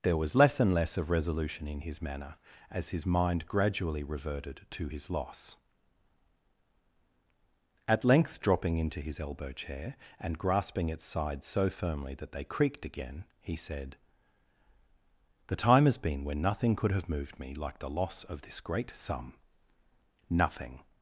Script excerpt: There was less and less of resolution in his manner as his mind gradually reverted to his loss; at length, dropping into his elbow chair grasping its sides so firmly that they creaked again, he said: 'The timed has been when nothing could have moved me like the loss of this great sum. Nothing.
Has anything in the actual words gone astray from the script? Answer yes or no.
yes